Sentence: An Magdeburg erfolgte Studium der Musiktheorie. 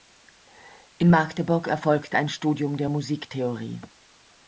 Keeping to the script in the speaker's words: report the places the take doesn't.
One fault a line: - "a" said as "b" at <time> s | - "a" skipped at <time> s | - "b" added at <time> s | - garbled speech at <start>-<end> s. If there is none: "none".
- "An" said as "In" at 1.0 s
- "ein" added at 2.2 s